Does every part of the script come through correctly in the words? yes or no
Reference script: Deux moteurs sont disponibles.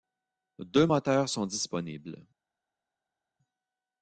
yes